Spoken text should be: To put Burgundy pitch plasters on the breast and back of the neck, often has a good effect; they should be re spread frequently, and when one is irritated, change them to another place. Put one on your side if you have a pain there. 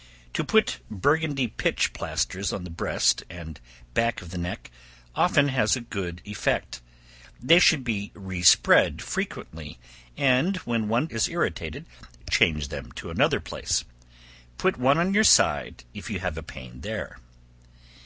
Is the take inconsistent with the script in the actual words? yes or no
no